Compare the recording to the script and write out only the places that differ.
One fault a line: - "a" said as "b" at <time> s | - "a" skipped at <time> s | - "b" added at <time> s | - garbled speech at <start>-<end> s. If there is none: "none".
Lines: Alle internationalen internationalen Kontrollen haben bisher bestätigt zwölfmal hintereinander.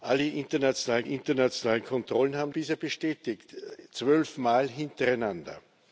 none